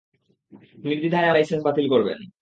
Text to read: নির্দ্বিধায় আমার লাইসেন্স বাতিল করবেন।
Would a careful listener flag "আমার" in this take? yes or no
yes